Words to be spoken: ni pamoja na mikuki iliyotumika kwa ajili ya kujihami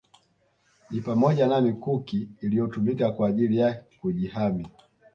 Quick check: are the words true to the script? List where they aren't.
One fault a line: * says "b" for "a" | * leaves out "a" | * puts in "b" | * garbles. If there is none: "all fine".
all fine